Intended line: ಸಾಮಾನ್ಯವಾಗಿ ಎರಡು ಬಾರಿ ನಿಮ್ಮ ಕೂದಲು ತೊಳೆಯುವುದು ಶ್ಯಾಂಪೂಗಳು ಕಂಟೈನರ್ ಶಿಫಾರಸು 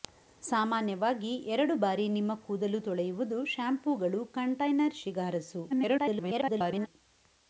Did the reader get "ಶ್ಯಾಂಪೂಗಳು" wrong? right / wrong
right